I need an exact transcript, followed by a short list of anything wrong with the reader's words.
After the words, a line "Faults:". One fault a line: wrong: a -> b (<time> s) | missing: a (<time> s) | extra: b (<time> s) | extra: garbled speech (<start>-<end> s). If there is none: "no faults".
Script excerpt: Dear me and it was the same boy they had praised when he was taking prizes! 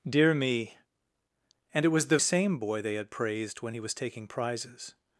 Dear me and it was the same boy they had praised when he was taking prizes!
Faults:
no faults